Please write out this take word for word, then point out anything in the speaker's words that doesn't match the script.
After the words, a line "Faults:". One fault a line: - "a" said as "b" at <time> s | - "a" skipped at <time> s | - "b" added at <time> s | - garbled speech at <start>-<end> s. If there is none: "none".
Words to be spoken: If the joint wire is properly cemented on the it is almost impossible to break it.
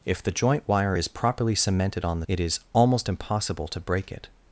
If the joint wire is properly cemented on the it is almost impossible to break it.
Faults:
none